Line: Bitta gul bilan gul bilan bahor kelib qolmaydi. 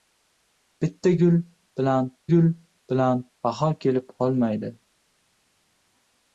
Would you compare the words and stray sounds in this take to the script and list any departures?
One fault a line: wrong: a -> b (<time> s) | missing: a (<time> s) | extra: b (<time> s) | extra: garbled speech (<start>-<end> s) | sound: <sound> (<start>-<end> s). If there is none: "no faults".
no faults